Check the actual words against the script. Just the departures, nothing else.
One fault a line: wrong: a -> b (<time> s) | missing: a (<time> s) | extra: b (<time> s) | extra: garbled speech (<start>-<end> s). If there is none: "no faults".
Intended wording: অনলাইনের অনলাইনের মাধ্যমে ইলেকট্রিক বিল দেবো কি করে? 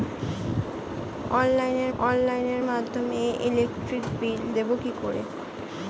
no faults